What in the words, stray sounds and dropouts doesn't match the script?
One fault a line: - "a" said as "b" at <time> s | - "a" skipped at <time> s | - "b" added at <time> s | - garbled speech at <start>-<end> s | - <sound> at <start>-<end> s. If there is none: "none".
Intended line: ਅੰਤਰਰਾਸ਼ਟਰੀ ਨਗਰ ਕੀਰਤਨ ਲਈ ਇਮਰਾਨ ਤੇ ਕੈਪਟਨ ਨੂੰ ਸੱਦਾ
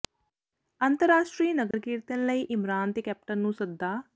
- dropout at 1.7-1.7 s